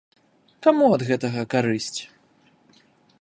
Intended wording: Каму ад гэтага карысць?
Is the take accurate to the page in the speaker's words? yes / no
yes